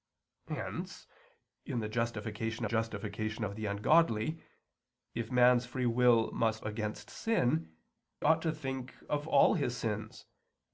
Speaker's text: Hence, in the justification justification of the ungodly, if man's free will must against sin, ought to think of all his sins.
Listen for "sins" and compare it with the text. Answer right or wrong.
right